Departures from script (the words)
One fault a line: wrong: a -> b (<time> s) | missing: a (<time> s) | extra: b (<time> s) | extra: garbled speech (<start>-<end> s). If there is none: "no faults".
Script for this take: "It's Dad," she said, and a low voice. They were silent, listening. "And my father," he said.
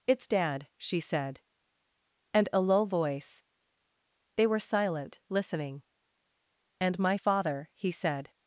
no faults